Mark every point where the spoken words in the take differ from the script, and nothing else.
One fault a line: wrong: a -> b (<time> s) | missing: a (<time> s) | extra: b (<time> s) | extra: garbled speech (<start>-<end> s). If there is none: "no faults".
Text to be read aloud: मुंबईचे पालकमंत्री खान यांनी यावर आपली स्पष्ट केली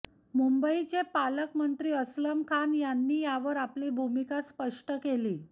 extra: अस्लम (1.9 s)
extra: भूमिका (3.9 s)